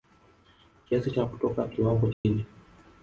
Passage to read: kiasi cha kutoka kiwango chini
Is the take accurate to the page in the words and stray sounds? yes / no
no